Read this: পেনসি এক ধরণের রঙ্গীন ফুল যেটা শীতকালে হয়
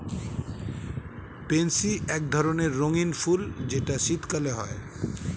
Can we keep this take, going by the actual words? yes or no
yes